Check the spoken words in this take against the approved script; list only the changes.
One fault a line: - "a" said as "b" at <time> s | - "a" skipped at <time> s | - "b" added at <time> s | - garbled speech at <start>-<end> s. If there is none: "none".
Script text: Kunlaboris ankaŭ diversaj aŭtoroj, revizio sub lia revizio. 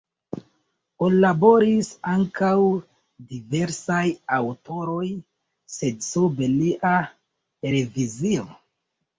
- "revizio" said as "sed" at 5.8 s